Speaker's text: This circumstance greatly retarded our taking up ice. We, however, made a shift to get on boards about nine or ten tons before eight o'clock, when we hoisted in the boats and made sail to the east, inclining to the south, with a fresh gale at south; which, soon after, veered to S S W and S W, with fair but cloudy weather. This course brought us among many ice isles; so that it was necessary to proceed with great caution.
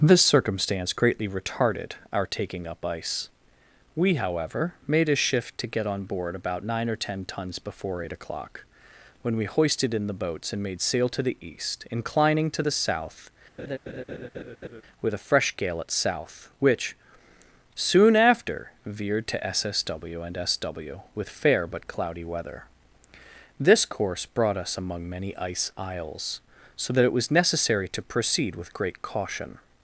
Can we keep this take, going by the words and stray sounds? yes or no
no